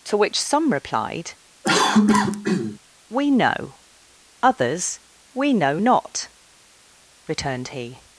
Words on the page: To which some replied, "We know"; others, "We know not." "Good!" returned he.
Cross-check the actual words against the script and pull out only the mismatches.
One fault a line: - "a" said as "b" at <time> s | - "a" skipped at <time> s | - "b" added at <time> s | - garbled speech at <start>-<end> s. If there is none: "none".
- "Good" skipped at 6.3 s